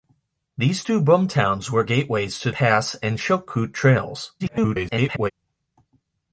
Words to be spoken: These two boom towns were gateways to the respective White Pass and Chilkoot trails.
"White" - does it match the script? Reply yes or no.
no